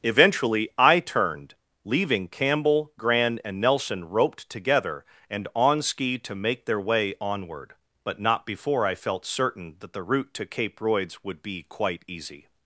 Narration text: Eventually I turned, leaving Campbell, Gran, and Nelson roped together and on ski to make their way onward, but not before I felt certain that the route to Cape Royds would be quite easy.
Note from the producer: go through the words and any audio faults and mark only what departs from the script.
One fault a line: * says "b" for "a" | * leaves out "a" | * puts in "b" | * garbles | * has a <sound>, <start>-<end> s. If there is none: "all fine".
all fine